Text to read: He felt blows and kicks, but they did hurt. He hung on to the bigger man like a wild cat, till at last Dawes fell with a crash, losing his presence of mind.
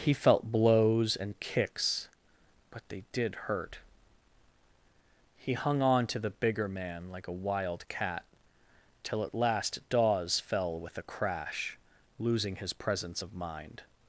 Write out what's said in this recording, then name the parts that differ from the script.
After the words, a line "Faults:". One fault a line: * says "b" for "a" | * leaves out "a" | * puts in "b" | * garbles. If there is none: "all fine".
He felt blows and kicks, but they did hurt. He hung on to the bigger man like a wild cat, till at last Dawes fell with a crash, losing his presence of mind.
Faults:
all fine